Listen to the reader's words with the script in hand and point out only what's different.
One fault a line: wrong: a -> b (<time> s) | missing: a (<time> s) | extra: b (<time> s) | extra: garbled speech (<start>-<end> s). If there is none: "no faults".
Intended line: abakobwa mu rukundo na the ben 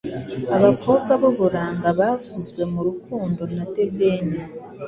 extra: b'uburanga bavuzwe (1.2 s)